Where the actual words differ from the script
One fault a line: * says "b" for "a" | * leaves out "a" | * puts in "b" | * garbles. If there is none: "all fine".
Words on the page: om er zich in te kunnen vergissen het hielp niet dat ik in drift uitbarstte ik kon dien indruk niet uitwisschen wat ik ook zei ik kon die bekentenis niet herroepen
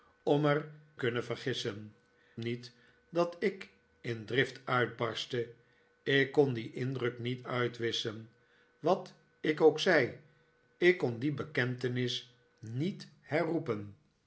* leaves out "zich in te"
* leaves out "het hielp"